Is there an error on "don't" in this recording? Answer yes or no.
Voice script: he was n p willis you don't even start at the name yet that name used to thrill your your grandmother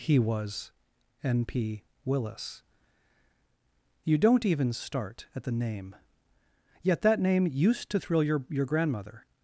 no